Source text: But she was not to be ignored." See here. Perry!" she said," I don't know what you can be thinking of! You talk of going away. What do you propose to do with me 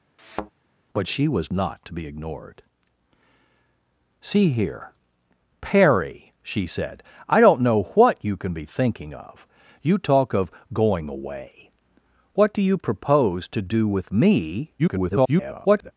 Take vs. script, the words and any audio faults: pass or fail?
fail